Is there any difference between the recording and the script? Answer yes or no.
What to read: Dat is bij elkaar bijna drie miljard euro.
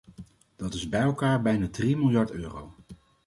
no